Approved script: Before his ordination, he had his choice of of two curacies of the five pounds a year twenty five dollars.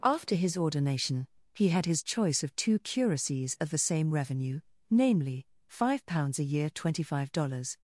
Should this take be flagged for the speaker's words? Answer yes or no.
yes